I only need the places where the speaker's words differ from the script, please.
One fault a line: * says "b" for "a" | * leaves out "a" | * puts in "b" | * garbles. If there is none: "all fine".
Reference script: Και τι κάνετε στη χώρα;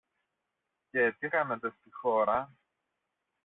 all fine